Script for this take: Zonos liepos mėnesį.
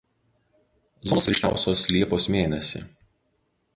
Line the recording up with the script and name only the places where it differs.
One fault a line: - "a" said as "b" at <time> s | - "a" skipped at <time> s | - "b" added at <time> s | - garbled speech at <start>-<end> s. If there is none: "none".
- "ryškiausios" added at 1.3 s